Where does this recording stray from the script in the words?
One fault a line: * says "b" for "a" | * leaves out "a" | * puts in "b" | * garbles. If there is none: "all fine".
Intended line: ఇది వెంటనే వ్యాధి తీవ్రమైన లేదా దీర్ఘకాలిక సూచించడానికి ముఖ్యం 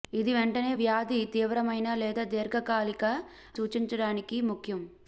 all fine